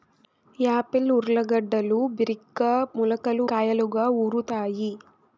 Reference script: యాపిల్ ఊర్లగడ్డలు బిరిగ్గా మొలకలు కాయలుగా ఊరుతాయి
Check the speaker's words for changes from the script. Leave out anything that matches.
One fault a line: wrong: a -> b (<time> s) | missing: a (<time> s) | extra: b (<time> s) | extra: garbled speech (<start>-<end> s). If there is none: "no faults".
no faults